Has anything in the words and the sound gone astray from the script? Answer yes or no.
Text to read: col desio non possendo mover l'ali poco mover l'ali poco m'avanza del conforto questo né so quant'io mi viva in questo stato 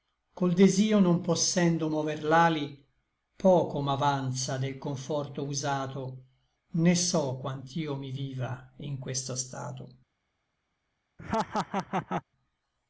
yes